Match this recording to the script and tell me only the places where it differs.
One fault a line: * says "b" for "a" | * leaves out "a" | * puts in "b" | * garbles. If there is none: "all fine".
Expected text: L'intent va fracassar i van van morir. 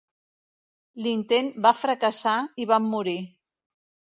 * leaves out "van"